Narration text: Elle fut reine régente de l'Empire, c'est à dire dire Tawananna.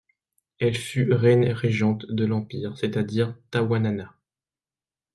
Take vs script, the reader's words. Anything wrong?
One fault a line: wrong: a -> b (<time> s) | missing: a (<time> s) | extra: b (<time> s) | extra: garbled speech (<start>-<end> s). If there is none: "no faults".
missing: dire (3.4 s)